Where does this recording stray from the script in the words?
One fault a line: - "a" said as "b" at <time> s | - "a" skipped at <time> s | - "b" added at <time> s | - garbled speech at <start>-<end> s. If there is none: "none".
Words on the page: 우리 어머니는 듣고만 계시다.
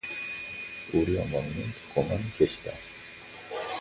none